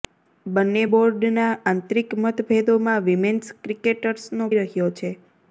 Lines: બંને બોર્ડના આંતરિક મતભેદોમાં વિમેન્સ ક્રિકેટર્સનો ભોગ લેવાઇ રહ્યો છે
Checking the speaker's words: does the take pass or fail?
fail